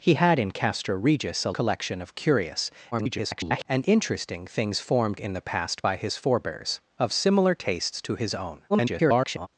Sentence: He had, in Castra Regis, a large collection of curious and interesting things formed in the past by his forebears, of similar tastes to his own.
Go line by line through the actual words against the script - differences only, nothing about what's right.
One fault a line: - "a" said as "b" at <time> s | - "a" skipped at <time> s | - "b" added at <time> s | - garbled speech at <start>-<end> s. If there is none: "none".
- "large" skipped at 1.5 s
- garbled speech at 2.9-3.7 s
- garbled speech at 8.7-9.5 s